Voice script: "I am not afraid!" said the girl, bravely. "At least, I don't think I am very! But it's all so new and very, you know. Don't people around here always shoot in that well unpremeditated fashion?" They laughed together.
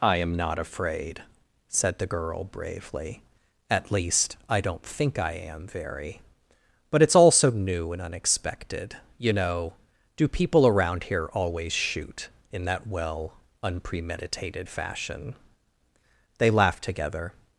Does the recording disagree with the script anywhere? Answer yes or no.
yes